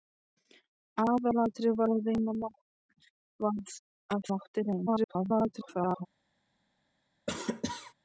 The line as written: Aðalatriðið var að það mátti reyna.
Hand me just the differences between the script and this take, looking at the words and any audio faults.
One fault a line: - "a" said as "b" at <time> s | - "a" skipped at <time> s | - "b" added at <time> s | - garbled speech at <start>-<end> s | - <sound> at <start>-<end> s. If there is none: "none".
- "það" skipped at 4.2 s
- garbled speech at 4.9-6.1 s
- cough at 7.3-7.9 s